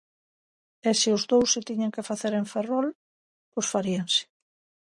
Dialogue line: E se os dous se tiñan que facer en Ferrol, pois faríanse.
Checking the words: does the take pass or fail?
pass